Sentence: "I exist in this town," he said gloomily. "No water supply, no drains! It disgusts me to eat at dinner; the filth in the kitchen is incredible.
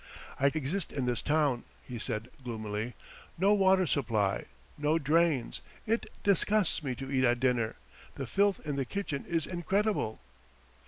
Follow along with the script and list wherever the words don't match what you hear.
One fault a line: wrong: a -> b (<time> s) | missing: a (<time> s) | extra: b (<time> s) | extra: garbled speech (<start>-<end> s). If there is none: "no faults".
no faults